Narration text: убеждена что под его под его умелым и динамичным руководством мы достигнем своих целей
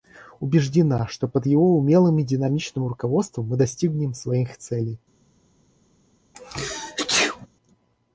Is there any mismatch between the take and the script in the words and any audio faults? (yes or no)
yes